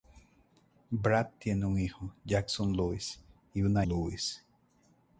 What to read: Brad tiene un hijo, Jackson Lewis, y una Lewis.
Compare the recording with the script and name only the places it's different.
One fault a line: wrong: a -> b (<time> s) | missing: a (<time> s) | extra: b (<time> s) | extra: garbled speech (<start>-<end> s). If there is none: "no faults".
no faults